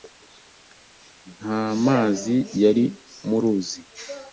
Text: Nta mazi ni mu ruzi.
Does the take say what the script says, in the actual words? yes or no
no